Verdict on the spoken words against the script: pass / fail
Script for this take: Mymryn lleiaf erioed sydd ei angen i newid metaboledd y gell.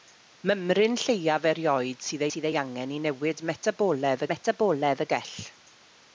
fail